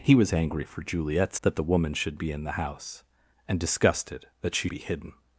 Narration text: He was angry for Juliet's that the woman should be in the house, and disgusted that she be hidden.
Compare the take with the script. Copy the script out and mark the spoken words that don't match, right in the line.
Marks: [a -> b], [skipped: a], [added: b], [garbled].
He was angry for Juliet's that the woman should be in the house, and disgusted that she be hidden.